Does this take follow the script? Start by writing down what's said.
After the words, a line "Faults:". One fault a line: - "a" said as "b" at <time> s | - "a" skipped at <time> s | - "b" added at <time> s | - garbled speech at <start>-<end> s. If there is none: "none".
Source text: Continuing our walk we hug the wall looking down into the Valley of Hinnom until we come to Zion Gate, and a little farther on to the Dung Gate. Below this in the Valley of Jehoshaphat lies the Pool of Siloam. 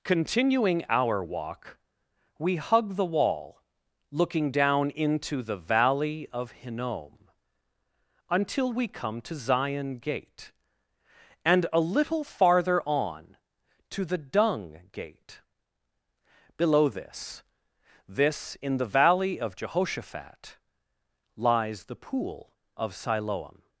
Continuing our walk we hug the wall looking down into the Valley of Hinnom until we come to Zion Gate, and a little farther on to the Dung Gate. Below this this in the Valley of Jehoshaphat lies the Pool of Siloam.
Faults:
- "this" added at 18.1 s